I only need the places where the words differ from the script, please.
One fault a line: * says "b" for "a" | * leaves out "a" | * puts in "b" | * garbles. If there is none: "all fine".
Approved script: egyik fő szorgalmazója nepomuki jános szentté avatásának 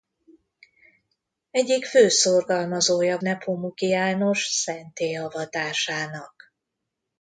all fine